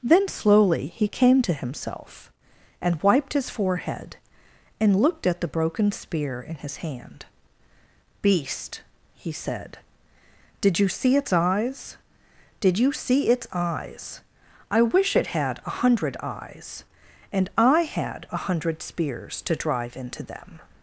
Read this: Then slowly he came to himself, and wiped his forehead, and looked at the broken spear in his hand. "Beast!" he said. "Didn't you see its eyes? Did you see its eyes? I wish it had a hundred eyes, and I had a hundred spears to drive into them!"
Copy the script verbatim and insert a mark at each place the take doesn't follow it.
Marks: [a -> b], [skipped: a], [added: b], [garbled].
Then slowly he came to himself, and wiped his forehead, and looked at the broken spear in his hand. "Beast!" he said. ["Didn't -> Did] you see its eyes? Did you see its eyes? I wish it had a hundred eyes, and I had a hundred spears to drive into them!"